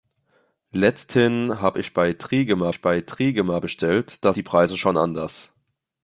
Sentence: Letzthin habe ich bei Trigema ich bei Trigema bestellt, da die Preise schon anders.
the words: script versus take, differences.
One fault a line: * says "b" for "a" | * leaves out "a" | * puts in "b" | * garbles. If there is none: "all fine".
all fine